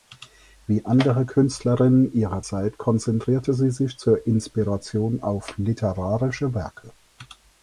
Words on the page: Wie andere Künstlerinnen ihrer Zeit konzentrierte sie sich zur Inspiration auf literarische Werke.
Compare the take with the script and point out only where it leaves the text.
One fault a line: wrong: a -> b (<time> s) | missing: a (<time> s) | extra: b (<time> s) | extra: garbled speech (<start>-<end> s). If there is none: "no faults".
no faults